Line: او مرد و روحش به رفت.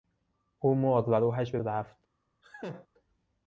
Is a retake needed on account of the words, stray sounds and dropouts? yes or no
yes